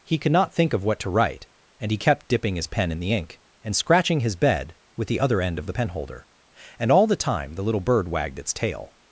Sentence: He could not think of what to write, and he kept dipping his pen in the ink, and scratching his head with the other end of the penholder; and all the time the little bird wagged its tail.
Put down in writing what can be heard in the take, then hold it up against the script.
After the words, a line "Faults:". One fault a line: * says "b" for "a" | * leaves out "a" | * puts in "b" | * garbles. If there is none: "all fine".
He could not think of what to write, and he kept dipping his pen in the ink, and scratching his bed with the other end of the penholder; and all the time the little bird wagged its tail.
Faults:
* says "bed" for "head"